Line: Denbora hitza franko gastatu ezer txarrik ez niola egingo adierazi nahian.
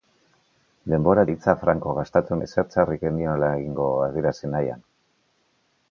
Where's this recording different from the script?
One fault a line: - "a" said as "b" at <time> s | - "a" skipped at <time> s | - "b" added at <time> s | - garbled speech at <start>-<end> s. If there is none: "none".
none